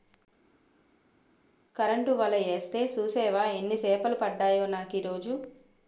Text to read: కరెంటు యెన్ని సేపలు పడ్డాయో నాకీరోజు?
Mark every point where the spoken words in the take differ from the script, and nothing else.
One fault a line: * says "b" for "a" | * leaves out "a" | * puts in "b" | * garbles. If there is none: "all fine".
* puts in "వల యేస్తే సూసేవా"